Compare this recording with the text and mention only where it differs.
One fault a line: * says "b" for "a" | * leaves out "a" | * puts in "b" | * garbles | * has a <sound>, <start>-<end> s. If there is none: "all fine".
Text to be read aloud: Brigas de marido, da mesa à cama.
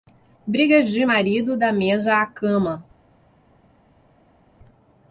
all fine